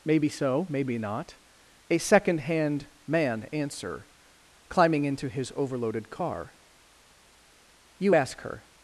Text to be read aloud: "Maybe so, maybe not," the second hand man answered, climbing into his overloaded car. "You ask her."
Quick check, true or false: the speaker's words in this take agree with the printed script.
false